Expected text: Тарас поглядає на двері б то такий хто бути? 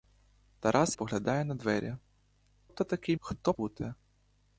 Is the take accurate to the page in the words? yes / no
yes